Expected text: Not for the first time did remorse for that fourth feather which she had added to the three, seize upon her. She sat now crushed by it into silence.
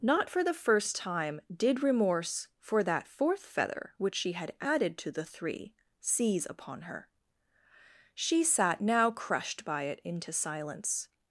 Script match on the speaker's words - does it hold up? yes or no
yes